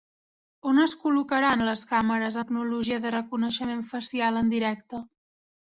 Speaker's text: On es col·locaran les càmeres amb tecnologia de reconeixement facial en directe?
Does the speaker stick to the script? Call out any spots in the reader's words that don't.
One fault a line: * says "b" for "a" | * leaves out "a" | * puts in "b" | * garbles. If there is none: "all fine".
* leaves out "amb"